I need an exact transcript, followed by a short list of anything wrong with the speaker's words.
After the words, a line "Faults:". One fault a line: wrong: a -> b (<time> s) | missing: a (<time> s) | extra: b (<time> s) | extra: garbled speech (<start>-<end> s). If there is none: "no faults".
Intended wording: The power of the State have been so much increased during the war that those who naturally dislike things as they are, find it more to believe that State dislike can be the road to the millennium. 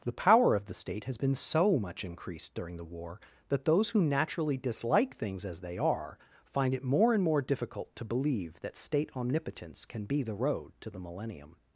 The power of the State has been so much increased during the war that those who naturally dislike things as they are, find it more and more difficult to believe that State omnipotence can be the road to the millennium.
Faults:
wrong: have -> has (1.0 s)
extra: and more difficult (7.1 s)
wrong: dislike -> omnipotence (9.2 s)